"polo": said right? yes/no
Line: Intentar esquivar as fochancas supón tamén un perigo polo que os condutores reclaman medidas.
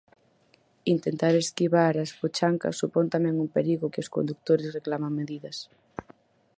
no